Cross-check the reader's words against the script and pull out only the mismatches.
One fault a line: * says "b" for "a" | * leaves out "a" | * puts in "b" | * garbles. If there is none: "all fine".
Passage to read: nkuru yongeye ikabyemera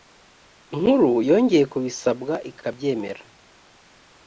* puts in "kubisabwa"